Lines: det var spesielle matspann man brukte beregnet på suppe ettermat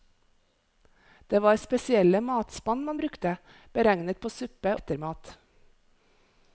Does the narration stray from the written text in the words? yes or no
no